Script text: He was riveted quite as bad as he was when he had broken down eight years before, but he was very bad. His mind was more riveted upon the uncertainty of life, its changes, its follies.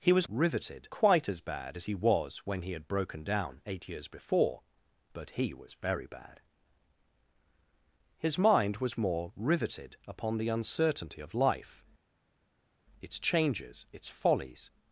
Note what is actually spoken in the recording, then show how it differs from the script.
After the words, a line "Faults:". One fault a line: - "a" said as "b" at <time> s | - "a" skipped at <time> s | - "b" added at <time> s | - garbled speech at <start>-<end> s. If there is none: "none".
He was riveted quite as bad as he was when he had broken down eight years before, but he was very bad. His mind was more riveted upon the uncertainty of life, its changes, its follies.
Faults:
none